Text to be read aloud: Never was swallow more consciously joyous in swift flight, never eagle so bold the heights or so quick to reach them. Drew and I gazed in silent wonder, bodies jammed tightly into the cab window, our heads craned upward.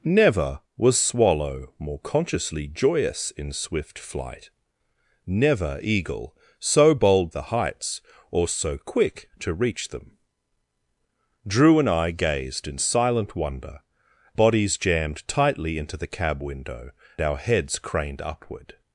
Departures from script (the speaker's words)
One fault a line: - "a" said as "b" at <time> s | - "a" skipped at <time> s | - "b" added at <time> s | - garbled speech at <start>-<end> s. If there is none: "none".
none